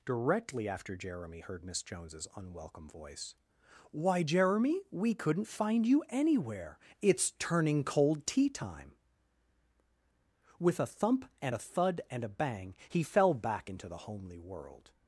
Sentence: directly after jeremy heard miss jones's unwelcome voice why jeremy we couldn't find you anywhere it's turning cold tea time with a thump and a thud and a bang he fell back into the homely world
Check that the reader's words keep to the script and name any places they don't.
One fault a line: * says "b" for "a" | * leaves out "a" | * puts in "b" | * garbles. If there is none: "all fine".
all fine